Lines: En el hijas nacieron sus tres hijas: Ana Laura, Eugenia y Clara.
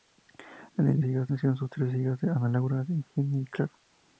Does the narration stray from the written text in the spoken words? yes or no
no